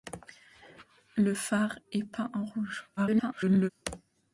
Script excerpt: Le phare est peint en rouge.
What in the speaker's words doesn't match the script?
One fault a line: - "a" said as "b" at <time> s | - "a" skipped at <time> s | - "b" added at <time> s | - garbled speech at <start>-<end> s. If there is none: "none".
- garbled speech at 3.0-3.7 s